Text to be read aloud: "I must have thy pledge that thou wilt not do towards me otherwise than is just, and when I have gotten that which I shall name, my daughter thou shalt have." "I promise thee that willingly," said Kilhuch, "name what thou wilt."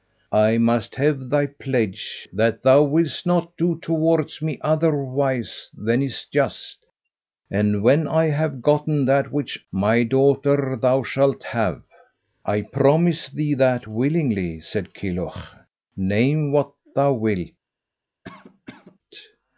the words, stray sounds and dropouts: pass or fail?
fail